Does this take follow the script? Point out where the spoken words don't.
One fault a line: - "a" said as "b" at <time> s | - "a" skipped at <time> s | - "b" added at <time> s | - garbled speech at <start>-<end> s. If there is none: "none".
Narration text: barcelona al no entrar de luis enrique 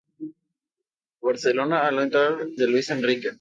none